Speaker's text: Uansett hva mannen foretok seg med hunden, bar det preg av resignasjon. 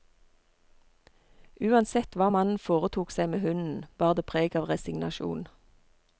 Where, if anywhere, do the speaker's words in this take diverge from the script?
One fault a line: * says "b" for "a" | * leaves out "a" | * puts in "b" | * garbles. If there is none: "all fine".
all fine